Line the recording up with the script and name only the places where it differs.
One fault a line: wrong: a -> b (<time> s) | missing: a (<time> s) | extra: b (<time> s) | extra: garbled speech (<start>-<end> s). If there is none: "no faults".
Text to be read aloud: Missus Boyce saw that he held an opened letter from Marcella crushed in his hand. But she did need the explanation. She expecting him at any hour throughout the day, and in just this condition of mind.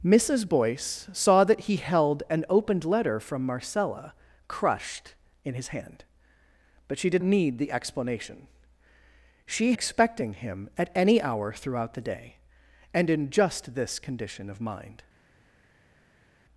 no faults